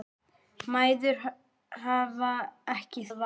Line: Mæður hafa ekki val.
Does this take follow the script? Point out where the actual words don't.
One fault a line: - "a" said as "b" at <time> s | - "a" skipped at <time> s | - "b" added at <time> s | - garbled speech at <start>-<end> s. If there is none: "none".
none